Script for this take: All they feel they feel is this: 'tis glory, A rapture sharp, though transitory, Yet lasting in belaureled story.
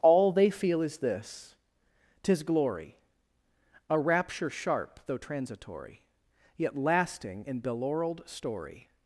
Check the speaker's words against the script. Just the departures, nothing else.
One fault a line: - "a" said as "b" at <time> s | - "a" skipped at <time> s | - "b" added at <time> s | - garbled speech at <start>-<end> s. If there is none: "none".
- "they feel" skipped at 0.8 s